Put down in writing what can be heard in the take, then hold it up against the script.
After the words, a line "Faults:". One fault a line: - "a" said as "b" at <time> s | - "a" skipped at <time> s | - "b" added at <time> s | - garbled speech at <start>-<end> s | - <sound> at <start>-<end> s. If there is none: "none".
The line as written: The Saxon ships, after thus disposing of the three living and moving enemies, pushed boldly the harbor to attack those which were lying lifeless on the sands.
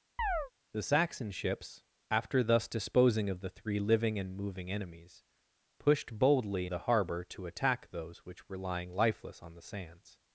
The Saxon ships, after thus disposing of the three living and moving enemies, pushed boldly the harbor to attack those which were lying lifeless on the sands.
Faults:
- chirp at 0.2-0.5 s